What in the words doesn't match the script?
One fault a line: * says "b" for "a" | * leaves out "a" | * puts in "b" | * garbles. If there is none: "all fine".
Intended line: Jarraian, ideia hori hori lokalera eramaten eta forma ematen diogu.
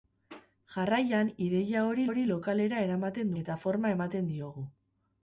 all fine